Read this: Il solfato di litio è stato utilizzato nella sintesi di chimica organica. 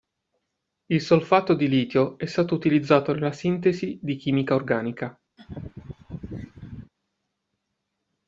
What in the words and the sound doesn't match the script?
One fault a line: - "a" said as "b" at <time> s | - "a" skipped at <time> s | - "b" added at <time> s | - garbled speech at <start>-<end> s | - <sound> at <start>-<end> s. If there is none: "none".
- laugh at 5.4-6.9 s